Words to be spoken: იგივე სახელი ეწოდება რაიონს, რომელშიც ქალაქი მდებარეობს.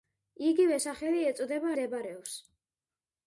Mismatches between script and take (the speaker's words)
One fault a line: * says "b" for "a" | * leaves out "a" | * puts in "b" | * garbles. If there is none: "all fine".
* leaves out "რაიონს რომელშიც ქალაქი"